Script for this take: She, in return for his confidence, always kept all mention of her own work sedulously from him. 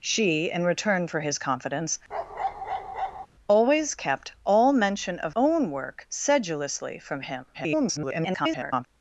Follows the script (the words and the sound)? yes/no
no